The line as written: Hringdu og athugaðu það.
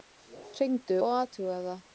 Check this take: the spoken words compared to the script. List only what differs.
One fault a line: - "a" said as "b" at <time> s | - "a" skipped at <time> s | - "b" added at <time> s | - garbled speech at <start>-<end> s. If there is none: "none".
none